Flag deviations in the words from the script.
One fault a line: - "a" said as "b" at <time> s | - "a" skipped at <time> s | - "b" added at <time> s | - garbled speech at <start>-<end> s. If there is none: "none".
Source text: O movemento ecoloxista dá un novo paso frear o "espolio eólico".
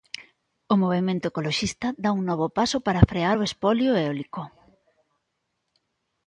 - "para" added at 2.9 s